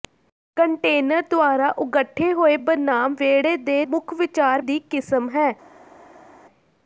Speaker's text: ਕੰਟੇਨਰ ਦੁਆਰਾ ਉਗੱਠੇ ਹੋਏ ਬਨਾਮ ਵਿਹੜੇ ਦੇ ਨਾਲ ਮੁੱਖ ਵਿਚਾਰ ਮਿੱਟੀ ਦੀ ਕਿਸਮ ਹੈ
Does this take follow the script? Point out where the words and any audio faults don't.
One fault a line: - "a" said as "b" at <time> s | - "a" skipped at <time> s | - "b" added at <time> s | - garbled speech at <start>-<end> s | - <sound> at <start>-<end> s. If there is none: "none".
- "ਨਾਲ" skipped at 3.8 s
- "ਮਿੱਟੀ" skipped at 4.7 s